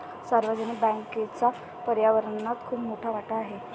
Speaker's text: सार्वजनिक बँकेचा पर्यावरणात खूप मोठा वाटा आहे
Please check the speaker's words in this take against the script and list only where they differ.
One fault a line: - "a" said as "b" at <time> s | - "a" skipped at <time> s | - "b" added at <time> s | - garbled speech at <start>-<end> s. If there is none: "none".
none